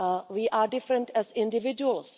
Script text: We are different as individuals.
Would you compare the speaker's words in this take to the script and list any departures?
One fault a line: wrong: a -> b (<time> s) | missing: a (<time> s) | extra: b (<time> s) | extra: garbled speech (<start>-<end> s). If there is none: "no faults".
no faults